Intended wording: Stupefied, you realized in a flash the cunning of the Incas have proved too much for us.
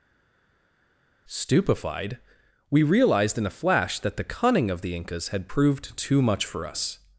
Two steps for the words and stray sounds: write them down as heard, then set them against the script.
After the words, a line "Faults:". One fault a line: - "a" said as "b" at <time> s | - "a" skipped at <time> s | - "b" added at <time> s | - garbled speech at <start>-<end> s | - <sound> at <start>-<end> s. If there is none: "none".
Stupefied, we realized in a flash that the cunning of the Incas had proved too much for us.
Faults:
- "you" said as "we" at 2.7 s
- "that" added at 4.0 s
- "have" said as "had" at 5.3 s